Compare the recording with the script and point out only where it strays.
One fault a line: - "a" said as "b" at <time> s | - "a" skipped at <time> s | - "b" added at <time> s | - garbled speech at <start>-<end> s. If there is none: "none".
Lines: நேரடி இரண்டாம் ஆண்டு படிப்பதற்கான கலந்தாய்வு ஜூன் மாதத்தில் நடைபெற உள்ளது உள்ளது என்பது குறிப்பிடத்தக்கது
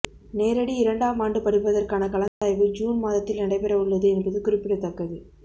- "உள்ளது" skipped at 4.1 s